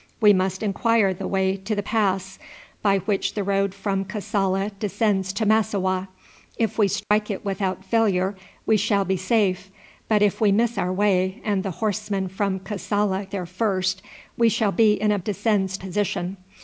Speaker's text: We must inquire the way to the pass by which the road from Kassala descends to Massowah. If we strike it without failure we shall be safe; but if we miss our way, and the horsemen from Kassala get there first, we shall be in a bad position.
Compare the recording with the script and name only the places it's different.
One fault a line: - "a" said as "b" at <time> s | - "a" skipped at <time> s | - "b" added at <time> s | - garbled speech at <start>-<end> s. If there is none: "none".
- "get" skipped at 13.3 s
- "bad" said as "descends" at 15.2 s